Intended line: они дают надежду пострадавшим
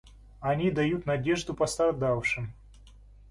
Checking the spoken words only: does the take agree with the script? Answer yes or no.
yes